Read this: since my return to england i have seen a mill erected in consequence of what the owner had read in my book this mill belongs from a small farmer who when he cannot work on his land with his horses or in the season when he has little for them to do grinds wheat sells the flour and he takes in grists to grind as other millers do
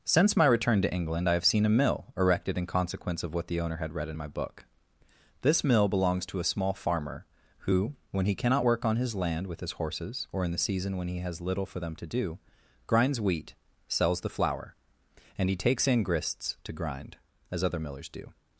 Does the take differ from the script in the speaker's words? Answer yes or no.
yes